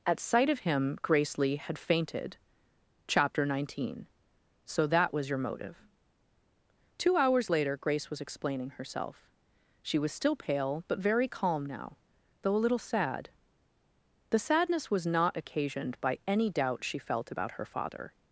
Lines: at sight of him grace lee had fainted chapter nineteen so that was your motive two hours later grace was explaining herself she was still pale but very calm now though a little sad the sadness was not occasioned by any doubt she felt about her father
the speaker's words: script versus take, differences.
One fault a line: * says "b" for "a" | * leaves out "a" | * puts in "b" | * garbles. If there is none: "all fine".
all fine